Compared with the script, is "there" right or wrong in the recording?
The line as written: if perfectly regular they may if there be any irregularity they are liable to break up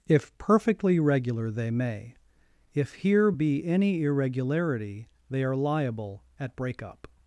wrong